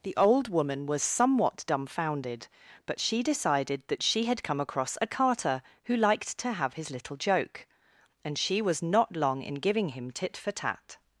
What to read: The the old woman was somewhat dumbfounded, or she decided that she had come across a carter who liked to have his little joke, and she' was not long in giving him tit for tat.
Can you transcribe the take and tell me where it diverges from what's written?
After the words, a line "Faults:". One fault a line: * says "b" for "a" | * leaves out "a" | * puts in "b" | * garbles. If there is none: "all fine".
The old woman was somewhat dumbfounded, but she decided that she had come across a carter who liked to have his little joke, and she' was not long in giving him tit for tat.
Faults:
* leaves out "the"
* says "but" for "or"